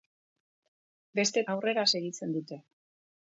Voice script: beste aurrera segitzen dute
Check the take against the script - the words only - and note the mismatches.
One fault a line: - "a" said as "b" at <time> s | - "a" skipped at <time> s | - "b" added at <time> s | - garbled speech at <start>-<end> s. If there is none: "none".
none